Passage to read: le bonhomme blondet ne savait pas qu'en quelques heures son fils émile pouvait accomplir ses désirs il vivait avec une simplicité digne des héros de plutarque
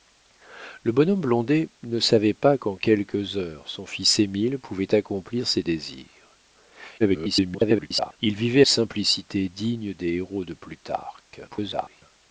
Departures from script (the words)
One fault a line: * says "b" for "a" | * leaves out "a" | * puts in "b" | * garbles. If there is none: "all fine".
* garbles
* leaves out "avec une"
* garbles